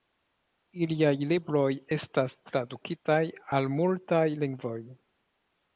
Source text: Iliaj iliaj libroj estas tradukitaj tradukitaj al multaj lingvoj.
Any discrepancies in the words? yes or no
yes